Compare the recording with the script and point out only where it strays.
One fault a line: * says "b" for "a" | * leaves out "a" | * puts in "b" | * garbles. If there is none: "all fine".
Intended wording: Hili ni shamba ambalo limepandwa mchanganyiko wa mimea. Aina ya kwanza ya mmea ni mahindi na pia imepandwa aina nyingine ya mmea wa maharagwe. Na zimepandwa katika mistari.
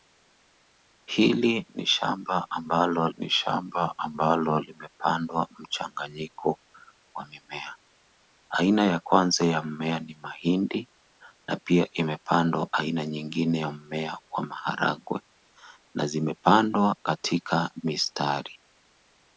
* puts in "ni shamba ambalo"